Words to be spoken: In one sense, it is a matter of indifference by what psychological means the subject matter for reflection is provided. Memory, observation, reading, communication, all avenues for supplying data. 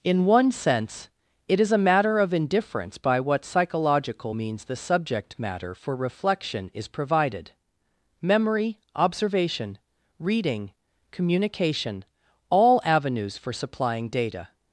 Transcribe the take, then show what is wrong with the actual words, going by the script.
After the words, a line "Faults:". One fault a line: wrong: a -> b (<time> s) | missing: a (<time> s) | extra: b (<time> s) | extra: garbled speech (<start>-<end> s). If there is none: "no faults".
In one sense, it is a matter of indifference by what psychological means the subject matter for reflection is provided. Memory, observation, reading, communication, all avenues for supplying data.
Faults:
no faults